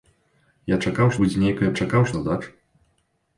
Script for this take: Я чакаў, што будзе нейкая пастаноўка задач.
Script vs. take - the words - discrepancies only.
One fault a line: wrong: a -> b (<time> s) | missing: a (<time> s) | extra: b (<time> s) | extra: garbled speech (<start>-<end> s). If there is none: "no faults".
missing: што (1.1 s)
wrong: пастаноўка -> чакаў (1.8 s)